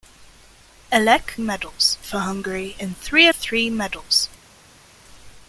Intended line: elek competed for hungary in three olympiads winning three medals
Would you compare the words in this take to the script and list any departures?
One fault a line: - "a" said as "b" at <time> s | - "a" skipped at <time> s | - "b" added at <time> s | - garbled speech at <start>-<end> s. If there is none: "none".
- "competed" said as "medals" at 1.4 s
- "olympiads winning" skipped at 3.3 s